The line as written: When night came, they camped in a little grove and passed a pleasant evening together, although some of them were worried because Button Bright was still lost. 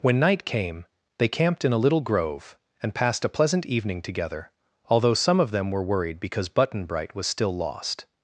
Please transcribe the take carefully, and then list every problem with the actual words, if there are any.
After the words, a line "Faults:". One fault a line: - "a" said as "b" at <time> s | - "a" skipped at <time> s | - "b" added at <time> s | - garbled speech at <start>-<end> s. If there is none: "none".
When night came, they camped in a little grove and passed a pleasant evening together, although some of them were worried because Button Bright was still lost.
Faults:
none